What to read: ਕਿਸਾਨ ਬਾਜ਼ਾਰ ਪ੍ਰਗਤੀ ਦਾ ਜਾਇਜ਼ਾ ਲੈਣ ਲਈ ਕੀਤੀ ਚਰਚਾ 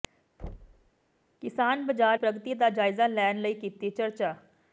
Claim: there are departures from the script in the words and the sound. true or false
true